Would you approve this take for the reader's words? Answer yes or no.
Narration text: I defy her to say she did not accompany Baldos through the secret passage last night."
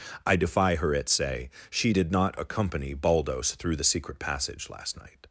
no